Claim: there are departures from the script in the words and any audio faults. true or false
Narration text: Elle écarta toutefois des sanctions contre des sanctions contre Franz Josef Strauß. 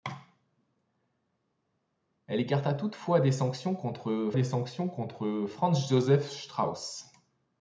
false